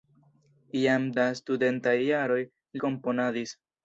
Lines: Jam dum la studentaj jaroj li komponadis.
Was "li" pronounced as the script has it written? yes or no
no